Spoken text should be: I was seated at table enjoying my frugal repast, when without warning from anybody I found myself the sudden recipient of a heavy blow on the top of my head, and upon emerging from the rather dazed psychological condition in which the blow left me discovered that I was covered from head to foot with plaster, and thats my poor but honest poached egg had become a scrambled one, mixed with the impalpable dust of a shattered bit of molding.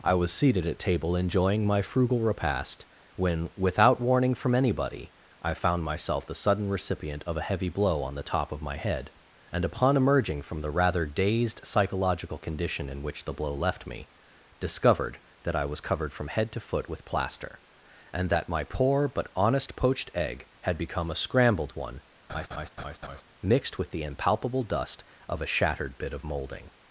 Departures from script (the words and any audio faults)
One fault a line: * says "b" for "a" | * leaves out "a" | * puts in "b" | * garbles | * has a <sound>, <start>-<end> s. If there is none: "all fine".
* says "that" for "thats"
* has a laugh, 22.3-23.2 s